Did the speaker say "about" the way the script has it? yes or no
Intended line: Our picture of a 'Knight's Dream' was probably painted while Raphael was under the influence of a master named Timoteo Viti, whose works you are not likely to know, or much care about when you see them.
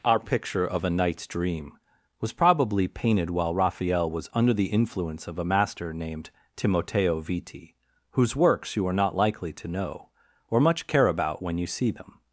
yes